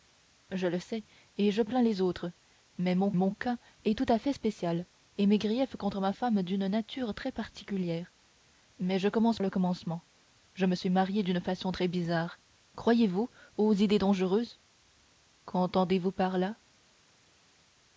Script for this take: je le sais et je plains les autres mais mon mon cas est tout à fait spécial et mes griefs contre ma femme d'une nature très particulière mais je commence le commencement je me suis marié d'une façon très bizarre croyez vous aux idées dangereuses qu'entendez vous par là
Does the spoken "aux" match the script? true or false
true